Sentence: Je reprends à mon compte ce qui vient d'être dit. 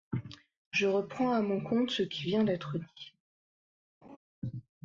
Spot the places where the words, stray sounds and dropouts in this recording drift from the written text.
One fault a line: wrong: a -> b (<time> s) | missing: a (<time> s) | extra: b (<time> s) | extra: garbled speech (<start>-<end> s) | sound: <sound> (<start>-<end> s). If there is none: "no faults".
sound: laugh (4.0-4.2 s)